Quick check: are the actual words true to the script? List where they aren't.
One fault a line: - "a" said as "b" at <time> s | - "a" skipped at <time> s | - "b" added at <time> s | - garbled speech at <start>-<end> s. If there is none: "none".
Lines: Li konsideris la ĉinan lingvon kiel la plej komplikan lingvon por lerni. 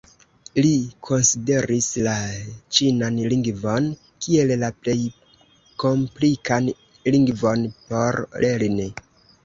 none